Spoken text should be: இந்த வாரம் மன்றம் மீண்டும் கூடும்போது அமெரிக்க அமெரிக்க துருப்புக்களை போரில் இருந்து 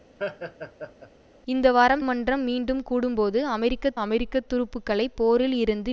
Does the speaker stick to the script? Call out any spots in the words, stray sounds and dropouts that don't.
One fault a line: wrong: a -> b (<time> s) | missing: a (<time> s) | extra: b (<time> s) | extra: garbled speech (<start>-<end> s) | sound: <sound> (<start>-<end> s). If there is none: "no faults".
sound: laugh (0.2-1.1 s)